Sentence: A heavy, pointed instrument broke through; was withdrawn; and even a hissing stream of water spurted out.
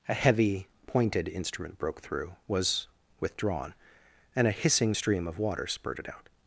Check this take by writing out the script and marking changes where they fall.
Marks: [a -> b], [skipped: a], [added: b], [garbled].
A heavy, pointed instrument broke through; was withdrawn; and [skipped: even] a hissing stream of water spurted out.